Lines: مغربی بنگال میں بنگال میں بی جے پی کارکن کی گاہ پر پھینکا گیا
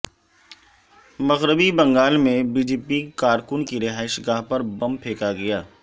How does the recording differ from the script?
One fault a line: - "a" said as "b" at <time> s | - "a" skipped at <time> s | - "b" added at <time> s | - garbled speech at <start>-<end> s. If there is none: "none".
- "بنگال میں" skipped at 2.4 s
- "رہائش" added at 3.8 s
- "بم" added at 4.8 s